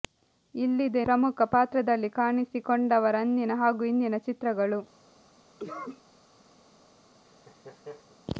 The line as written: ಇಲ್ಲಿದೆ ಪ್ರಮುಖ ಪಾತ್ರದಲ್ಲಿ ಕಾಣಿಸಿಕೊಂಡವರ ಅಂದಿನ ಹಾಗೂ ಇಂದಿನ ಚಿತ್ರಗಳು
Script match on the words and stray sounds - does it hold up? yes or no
no